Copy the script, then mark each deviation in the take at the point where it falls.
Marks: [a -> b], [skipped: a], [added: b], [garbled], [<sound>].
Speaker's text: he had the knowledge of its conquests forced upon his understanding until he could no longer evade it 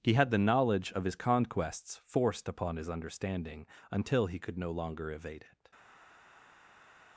he had the knowledge of [its -> his] conquests forced upon his understanding until he could no longer evade it